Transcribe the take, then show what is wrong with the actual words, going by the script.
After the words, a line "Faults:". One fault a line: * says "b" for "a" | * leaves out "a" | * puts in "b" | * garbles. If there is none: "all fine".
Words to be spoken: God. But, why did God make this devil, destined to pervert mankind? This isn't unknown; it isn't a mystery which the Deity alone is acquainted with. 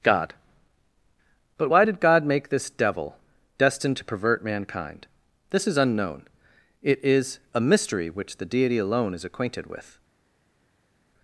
God. But, why did God make this devil, destined to pervert mankind? This is unknown; it is a mystery which the Deity alone is acquainted with.
Faults:
* says "is" for "isn't"
* says "is" for "isn't"